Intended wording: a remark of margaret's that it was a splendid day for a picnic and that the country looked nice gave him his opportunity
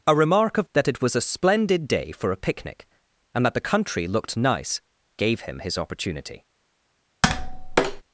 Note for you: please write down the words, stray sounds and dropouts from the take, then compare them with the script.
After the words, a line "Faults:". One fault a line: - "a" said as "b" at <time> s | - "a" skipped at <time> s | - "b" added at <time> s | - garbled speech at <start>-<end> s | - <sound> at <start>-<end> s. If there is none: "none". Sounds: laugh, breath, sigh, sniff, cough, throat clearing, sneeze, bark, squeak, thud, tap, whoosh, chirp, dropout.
a remark of that it was a splendid day for a picnic and that the country looked nice gave him his opportunity
Faults:
- "margaret's" skipped at 0.7 s
- tap at 7.2-8.0 s